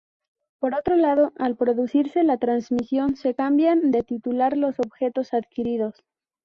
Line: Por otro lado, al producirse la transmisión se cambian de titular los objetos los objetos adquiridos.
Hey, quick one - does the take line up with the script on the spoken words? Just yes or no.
no